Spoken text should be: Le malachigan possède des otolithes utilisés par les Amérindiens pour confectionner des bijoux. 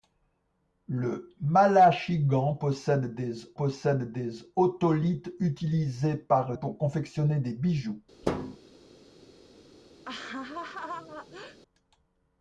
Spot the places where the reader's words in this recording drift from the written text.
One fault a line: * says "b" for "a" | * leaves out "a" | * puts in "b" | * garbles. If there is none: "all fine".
* puts in "possède des"
* leaves out "les Amérindiens"